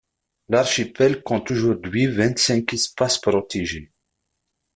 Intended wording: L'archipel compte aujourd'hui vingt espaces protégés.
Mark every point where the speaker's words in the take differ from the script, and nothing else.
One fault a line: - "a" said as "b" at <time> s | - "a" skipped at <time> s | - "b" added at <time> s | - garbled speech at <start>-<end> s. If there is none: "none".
- "cinq" added at 2.4 s